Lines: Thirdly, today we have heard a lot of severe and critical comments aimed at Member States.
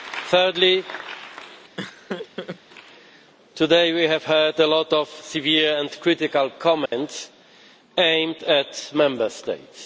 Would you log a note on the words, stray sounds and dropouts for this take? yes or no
yes